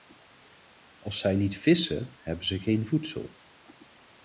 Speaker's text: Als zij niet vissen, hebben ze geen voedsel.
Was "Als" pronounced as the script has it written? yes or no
yes